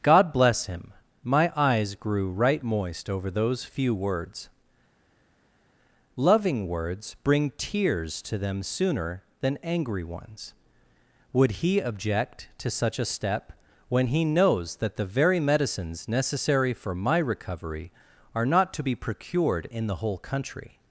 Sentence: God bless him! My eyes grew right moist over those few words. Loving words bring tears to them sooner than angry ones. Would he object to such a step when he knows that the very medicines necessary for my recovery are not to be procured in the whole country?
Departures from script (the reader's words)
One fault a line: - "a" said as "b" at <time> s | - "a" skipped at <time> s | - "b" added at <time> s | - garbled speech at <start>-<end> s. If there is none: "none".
none